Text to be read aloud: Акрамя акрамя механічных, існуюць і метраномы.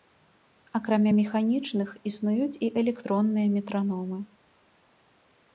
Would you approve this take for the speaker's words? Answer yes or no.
no